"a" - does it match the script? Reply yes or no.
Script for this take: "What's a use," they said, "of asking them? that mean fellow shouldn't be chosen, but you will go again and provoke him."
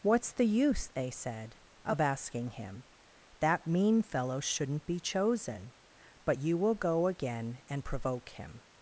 no